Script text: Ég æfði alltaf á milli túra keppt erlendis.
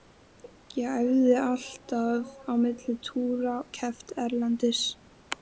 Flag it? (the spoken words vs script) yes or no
no